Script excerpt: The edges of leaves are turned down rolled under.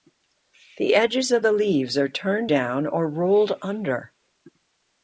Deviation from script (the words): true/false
true